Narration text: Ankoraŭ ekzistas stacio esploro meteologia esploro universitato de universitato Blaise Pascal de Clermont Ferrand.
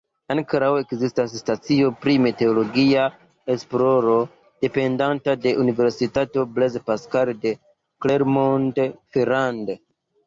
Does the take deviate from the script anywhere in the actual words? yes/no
yes